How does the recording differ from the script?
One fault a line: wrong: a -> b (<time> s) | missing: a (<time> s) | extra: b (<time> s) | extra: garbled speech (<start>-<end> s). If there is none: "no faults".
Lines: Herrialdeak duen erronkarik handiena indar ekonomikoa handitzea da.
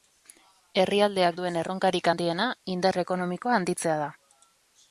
no faults